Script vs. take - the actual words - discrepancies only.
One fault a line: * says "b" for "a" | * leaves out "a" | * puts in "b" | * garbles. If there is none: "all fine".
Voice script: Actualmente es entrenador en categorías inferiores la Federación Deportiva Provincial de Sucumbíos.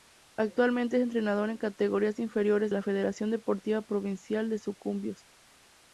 all fine